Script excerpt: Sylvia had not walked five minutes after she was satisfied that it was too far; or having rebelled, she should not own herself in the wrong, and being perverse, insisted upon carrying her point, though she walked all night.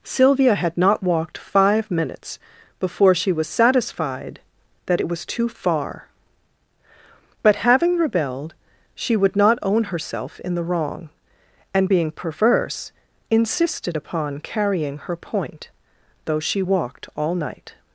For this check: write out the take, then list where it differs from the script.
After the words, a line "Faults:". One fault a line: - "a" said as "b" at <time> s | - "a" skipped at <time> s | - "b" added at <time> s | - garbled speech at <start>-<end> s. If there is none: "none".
Sylvia had not walked five minutes before she was satisfied that it was too far; but having rebelled, she would not own herself in the wrong, and being perverse, insisted upon carrying her point, though she walked all night.
Faults:
- "after" said as "before" at 2.8 s
- "or" said as "but" at 7.4 s
- "should" said as "would" at 9.2 s